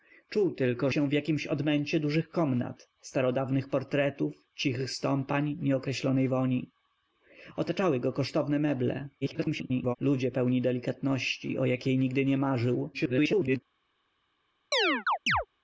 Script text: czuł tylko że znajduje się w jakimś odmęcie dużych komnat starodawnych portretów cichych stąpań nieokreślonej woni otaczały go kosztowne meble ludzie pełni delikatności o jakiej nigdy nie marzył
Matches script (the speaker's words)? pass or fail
fail